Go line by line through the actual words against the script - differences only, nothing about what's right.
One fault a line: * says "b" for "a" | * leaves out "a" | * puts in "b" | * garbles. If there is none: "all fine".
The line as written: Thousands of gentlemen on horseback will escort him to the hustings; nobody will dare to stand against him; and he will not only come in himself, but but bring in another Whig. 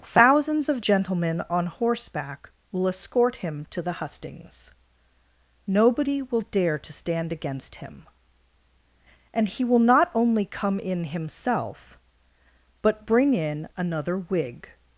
* leaves out "but"